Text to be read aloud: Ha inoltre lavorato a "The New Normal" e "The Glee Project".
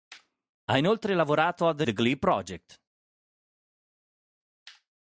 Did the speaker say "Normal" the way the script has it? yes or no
no